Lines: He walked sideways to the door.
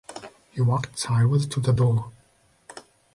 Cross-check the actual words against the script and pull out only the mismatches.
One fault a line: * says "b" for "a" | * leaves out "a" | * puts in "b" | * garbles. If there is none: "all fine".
all fine